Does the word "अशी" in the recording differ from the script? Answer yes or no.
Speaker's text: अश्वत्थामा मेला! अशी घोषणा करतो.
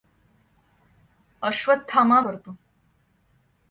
yes